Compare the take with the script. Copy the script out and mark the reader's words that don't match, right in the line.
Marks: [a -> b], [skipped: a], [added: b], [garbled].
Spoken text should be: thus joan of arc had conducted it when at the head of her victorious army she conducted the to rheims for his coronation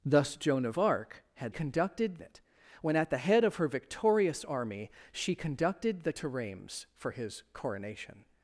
thus joan of arc had conducted it when at the head of her victorious army she conducted the to rheims for his coronation